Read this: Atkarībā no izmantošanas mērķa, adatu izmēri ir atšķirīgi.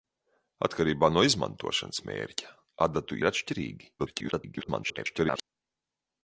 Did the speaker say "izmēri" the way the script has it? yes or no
no